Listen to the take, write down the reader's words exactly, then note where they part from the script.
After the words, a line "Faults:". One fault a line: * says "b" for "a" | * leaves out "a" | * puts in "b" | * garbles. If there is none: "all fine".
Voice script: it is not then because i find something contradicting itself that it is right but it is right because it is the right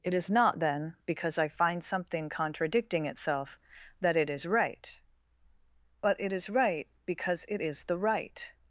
it is not then because i find something contradicting itself that it is right but it is right because it is the right
Faults:
all fine